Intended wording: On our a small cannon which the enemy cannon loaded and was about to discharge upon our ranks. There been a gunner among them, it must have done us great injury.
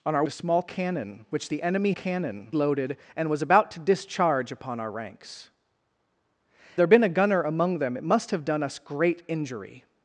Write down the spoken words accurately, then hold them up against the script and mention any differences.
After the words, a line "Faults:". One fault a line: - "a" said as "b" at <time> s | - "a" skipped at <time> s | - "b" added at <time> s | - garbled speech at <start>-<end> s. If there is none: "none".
On our a small cannon which the enemy cannon loaded and was about to discharge upon our ranks. There been a gunner among them, it must have done us great injury.
Faults:
none